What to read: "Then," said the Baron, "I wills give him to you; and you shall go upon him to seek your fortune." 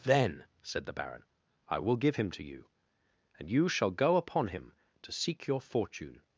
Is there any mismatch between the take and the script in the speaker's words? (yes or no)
yes